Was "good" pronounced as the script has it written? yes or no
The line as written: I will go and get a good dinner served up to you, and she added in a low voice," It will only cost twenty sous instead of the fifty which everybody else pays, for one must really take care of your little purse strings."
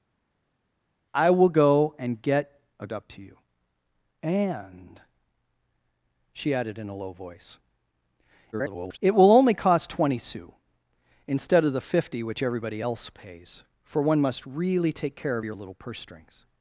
no